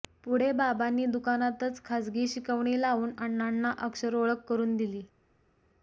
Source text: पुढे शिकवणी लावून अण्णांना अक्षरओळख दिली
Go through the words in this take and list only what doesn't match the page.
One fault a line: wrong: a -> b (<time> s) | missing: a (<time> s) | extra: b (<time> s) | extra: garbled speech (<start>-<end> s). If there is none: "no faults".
extra: बाबांनी दुकानातच खाजगी (0.5 s)
extra: करून (4.5 s)